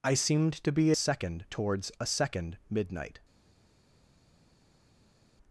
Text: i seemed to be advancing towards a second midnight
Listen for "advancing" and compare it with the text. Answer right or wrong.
wrong